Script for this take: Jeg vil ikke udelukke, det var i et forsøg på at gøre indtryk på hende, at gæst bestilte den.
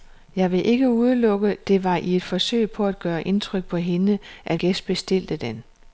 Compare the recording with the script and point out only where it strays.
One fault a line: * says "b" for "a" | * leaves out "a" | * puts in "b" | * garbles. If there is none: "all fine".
all fine